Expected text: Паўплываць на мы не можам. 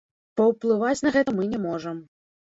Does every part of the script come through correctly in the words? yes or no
no